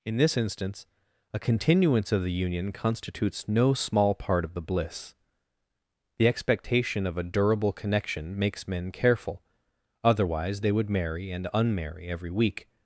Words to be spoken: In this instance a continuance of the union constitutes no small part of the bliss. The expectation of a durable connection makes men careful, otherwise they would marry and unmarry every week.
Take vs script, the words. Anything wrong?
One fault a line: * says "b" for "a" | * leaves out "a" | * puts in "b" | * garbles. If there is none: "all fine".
all fine